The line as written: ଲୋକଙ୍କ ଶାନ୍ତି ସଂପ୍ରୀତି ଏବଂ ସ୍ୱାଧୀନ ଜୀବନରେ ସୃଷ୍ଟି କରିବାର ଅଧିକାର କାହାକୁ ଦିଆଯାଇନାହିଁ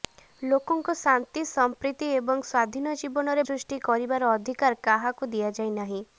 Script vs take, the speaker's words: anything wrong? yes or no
no